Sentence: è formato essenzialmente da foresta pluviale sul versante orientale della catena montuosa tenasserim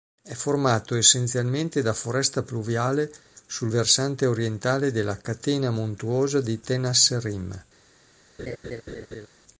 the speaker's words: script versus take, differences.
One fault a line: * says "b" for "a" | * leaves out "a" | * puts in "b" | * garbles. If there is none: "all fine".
* puts in "di"